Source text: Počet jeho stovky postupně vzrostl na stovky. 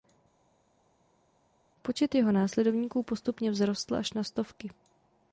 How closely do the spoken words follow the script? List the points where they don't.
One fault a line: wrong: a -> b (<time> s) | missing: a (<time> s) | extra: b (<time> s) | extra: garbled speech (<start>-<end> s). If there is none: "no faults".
wrong: stovky -> následovníků (2.3 s)
extra: až (3.9 s)